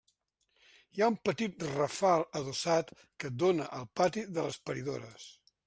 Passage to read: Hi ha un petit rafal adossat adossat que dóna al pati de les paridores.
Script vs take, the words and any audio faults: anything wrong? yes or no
yes